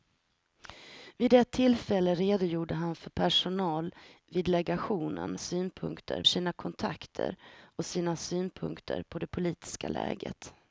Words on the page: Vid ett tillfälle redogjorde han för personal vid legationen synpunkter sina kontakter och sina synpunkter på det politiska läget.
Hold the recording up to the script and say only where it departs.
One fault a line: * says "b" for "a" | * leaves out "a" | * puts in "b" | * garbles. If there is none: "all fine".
all fine